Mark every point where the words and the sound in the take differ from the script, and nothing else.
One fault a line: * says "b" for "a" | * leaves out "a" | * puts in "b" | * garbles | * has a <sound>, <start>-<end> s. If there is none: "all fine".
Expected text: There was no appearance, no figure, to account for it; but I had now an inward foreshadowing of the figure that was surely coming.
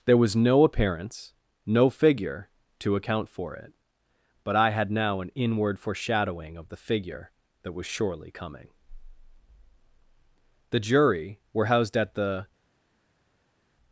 * puts in "The Jury were housed at the"